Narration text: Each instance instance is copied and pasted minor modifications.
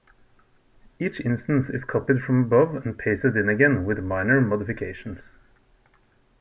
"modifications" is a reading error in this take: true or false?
false